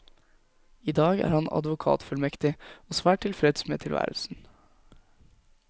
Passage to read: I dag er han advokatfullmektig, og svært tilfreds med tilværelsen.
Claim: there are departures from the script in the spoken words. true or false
false